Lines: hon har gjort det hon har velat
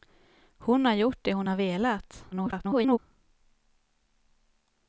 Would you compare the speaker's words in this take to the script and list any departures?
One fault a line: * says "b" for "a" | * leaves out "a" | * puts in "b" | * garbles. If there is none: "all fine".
* garbles